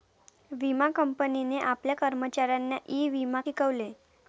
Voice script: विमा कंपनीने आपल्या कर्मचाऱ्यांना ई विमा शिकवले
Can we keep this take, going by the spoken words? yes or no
yes